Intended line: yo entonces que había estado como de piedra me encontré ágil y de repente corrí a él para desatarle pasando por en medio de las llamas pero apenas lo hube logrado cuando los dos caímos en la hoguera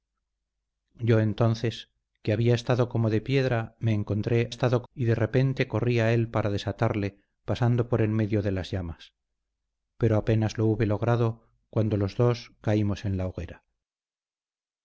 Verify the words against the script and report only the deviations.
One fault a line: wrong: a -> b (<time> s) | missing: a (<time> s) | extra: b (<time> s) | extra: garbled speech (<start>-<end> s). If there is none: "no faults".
wrong: ágil -> estado (4.5 s)